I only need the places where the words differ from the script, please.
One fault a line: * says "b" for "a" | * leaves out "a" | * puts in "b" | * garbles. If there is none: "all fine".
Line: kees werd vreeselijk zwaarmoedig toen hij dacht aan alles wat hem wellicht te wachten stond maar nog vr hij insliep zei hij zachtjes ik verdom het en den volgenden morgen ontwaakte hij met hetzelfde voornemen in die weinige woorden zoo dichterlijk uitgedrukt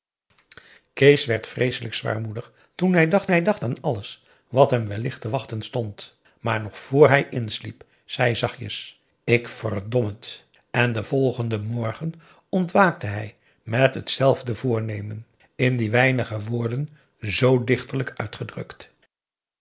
* puts in "hij dacht"